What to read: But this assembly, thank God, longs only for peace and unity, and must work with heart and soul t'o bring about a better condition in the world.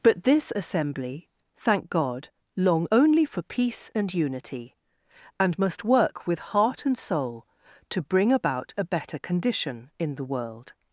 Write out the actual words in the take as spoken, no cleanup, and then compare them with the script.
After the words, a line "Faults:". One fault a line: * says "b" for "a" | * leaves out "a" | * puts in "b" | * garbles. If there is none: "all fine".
But this assembly, thank God, long only for peace and unity, and must work with heart and soul t'o bring about a better condition in the world.
Faults:
* says "long" for "longs"